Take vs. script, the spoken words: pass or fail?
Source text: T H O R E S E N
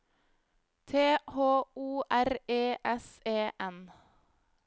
pass